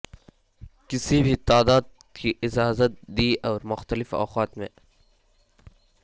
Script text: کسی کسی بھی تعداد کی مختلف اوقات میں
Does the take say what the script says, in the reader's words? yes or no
no